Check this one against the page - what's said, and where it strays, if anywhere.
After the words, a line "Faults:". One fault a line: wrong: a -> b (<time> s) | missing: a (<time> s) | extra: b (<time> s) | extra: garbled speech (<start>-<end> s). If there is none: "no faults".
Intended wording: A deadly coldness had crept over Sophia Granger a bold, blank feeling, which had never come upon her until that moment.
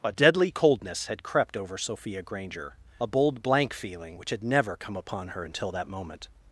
A deadly coldness had crept over Sophia Granger a bold, blank feeling, which had never come upon her until that moment.
Faults:
no faults